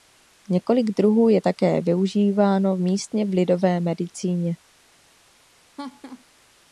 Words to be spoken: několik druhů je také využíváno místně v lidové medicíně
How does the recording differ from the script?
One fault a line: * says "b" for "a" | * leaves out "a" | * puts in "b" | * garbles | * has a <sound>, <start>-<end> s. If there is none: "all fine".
* has a laugh, 5.8-6.2 s